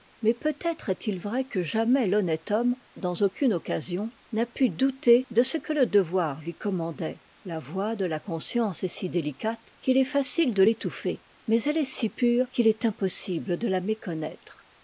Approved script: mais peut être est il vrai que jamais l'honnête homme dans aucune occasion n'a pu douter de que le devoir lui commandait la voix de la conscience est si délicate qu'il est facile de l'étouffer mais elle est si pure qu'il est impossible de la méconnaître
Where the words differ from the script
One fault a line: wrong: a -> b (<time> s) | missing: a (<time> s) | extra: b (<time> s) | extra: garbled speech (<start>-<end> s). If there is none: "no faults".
extra: ce (5.4 s)